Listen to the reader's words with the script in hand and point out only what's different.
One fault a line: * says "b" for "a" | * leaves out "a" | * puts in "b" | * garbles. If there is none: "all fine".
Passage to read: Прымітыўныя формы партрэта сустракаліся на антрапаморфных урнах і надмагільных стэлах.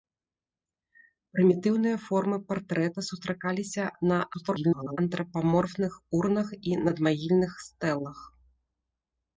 * garbles